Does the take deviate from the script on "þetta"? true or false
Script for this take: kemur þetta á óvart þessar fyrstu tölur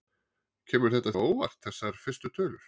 false